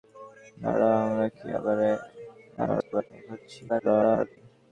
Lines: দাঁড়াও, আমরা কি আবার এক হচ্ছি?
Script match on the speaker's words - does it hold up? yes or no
no